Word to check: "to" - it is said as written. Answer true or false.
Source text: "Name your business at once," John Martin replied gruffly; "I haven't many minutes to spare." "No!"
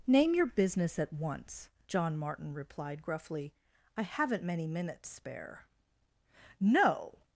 false